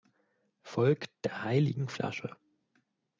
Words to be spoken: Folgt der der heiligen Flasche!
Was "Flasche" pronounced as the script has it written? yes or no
yes